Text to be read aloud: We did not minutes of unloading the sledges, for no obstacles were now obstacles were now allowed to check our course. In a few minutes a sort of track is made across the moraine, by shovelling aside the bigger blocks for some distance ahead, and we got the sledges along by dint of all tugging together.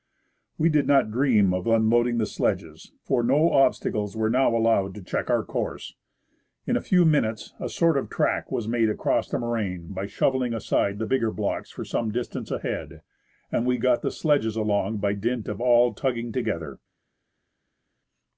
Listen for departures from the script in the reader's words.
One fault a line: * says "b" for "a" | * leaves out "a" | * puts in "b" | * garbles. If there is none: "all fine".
* says "dream" for "minutes"
* leaves out "obstacles were now"
* says "was" for "is"